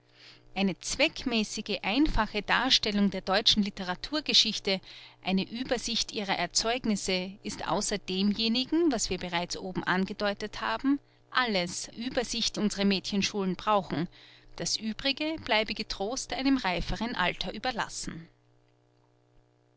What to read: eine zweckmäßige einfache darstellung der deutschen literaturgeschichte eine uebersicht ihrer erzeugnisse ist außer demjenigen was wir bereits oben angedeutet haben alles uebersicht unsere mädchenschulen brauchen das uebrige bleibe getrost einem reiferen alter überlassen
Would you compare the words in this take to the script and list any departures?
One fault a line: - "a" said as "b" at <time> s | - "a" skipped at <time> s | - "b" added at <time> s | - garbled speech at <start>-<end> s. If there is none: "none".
none